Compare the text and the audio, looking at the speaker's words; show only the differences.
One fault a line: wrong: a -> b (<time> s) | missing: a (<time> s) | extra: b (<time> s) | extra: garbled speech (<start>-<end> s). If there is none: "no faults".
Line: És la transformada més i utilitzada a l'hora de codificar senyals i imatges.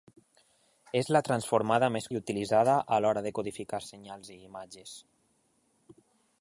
no faults